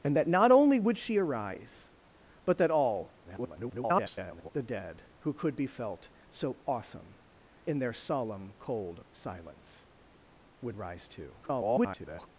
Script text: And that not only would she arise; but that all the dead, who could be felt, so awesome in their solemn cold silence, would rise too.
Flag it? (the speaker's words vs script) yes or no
yes